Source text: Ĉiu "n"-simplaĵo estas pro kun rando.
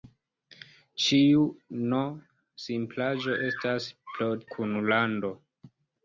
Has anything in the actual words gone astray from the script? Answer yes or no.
no